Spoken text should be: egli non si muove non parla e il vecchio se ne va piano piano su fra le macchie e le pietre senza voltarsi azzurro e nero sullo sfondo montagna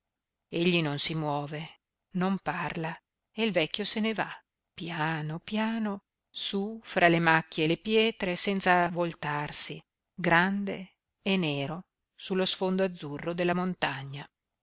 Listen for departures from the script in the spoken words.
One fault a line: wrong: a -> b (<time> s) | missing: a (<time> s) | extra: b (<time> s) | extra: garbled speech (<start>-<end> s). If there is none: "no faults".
wrong: azzurro -> grande (10.1 s)
extra: azzurro della (12.8 s)